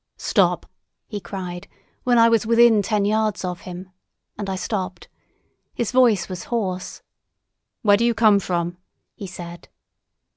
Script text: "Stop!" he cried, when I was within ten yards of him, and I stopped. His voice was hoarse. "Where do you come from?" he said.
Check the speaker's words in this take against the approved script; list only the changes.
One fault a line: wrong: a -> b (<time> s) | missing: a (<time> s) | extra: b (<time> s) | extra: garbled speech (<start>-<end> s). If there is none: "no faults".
no faults